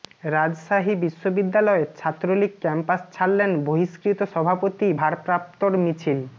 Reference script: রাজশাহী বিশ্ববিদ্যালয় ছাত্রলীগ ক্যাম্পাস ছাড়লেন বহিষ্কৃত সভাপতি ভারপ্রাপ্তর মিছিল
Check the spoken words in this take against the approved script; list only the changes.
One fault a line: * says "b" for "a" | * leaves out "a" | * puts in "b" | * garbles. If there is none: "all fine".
all fine